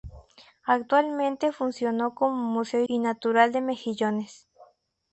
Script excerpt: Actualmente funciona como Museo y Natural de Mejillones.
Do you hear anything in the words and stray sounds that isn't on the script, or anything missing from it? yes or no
no